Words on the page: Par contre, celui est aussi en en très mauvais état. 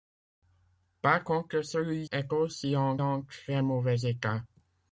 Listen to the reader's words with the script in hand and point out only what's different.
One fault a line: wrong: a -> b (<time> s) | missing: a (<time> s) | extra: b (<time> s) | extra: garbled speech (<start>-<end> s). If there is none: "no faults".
no faults